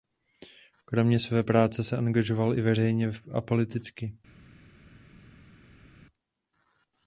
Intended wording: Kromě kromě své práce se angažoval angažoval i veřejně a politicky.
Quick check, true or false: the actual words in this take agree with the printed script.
false